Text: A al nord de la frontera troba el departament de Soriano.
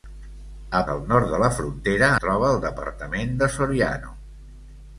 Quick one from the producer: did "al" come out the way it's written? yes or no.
yes